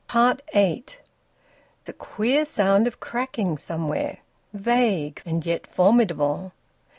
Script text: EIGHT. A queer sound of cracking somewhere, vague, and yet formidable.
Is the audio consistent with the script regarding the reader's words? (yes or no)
yes